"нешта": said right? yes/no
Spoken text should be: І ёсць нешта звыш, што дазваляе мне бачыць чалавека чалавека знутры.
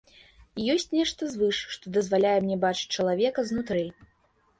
yes